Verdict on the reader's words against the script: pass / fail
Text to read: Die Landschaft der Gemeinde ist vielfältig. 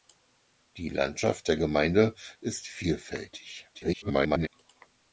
fail